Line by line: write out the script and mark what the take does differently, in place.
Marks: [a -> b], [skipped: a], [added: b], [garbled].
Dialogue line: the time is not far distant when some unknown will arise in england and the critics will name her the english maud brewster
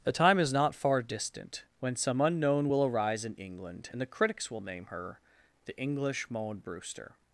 the time is not far distant when some unknown will arise in england and the critics will name her the english maud brewster